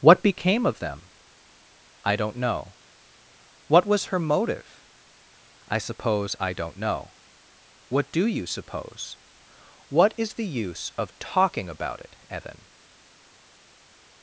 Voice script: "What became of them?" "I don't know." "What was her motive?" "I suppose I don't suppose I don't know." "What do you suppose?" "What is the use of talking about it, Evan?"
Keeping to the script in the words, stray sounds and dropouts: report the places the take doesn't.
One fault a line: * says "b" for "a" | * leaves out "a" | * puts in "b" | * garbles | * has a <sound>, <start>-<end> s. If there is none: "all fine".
* leaves out "suppose I don't"